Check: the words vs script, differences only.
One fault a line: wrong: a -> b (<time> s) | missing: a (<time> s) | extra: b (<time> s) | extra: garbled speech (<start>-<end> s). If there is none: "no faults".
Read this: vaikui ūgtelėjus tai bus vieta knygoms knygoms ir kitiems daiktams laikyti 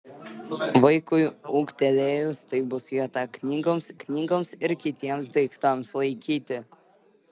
no faults